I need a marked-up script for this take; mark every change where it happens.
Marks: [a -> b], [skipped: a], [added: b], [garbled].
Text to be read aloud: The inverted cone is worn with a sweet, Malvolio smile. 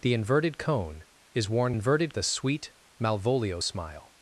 The inverted cone is worn [with -> inverted] a sweet, Malvolio smile.